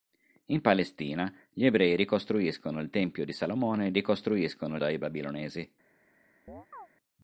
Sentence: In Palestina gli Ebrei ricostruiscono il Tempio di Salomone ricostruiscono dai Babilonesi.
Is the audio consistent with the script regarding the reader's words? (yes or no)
yes